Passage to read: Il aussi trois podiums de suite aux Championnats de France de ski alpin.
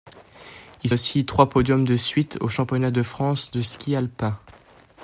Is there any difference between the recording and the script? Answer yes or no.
no